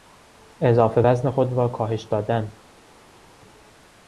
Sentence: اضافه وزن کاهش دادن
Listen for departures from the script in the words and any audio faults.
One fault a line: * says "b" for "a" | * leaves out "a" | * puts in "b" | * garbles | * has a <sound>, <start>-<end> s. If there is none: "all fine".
* puts in "خود را"